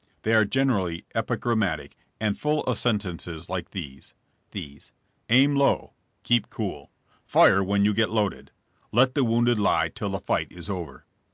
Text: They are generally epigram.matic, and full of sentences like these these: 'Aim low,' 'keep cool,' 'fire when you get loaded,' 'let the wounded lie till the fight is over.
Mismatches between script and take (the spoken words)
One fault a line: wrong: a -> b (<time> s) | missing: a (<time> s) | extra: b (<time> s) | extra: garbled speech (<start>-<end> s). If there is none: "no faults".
no faults